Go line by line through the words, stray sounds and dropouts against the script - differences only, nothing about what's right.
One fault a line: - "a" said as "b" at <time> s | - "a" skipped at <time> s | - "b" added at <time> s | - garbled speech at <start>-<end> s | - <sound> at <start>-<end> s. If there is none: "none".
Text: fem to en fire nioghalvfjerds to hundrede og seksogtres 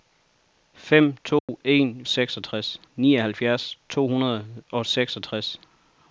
- dropout at 1.4-1.5 s
- "fire" said as "seksogtres" at 2.1 s